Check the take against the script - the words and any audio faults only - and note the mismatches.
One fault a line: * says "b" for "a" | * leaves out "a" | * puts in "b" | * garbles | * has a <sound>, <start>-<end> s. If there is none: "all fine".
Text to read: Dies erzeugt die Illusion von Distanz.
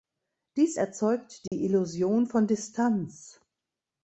* has a dropout, 1.5-1.5 s